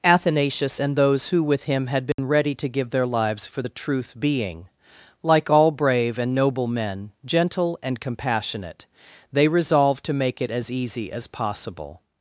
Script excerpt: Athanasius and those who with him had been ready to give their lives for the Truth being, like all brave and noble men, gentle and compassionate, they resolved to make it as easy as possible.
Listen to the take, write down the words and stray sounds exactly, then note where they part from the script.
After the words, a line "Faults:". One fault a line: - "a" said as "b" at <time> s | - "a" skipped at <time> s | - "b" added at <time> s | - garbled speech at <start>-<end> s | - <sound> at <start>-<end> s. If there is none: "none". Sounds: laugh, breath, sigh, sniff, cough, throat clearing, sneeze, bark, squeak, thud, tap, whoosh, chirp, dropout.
Athanasius and those who with him had been ready to give their lives for the Truth being, like all brave and noble men, gentle and compassionate, they resolved to make it as easy as possible.
Faults:
- dropout at 2.1-2.2 s